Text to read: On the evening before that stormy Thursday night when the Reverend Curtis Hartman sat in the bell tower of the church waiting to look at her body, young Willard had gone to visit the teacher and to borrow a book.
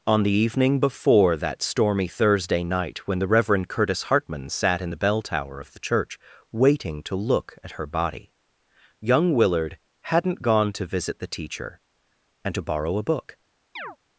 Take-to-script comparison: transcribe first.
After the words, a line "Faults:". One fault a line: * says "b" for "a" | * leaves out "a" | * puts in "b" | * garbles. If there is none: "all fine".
On the evening before that stormy Thursday night when the Reverend Curtis Hartman sat in the bell tower of the church waiting to look at her body, young Willard hadn't gone to visit the teacher and to borrow a book.
Faults:
* says "hadn't" for "had"